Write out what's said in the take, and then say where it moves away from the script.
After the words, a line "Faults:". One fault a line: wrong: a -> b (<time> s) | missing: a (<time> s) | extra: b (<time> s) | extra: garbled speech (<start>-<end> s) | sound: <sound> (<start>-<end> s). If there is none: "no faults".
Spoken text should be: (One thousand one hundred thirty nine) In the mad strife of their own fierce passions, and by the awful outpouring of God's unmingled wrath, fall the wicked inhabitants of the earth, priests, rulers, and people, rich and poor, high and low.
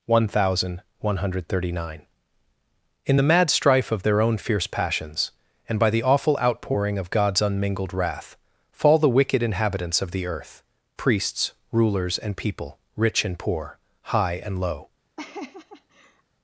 (One thousand one hundred thirty nine) In the mad strife of their own fierce passions, and by the awful outpouring of God's unmingled wrath, fall the wicked inhabitants of the earth, priests, rulers, and people, rich and poor, high and low.
Faults:
sound: laugh (15.2-16.2 s)